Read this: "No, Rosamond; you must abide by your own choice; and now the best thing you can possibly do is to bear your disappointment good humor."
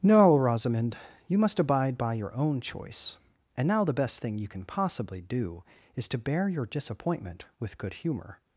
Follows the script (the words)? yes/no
no